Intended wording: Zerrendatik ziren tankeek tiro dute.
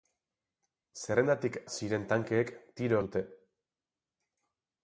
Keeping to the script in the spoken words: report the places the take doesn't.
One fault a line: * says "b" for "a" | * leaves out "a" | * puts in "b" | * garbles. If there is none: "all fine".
all fine